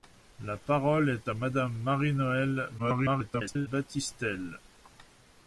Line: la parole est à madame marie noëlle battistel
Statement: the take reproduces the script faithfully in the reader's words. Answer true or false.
false